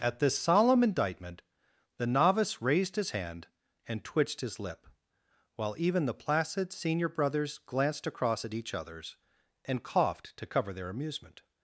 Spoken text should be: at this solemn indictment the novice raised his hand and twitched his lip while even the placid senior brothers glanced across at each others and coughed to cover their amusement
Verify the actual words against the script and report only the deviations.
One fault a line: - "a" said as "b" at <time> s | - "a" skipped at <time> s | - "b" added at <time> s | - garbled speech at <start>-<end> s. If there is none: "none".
none